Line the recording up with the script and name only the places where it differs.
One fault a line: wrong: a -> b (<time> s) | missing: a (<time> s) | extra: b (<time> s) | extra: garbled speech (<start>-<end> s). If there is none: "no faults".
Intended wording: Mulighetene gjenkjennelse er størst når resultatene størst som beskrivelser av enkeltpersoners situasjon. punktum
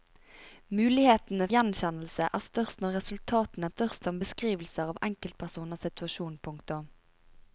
no faults